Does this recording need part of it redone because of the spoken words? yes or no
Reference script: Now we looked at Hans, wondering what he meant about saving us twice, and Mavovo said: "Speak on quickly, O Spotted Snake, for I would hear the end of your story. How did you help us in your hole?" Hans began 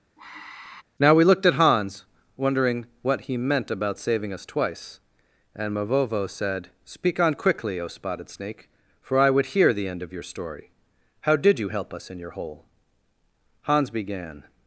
no